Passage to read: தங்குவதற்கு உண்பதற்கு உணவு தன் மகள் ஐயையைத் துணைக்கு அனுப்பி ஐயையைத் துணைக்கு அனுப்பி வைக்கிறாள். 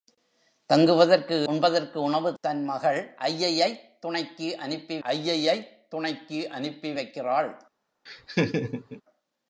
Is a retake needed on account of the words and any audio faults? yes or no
yes